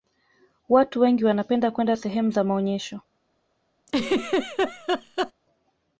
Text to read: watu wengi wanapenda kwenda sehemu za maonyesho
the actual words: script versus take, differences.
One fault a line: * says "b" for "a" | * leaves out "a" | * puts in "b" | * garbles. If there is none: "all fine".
all fine